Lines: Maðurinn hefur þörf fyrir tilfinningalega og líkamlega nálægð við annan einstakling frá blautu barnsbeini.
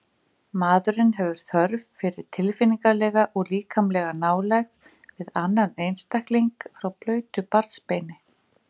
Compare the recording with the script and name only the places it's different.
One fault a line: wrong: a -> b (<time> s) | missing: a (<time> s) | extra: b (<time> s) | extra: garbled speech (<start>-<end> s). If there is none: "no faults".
no faults